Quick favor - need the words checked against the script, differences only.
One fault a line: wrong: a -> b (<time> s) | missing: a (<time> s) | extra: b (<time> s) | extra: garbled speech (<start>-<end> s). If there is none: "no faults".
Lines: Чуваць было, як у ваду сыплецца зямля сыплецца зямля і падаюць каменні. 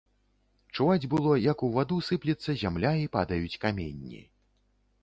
missing: сыплецца зямля (3.0 s)